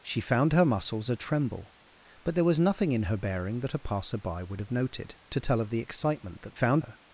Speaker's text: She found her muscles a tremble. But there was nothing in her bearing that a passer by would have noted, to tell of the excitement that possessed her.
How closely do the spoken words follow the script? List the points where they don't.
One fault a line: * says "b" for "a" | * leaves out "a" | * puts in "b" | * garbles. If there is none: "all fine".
* says "found" for "possessed"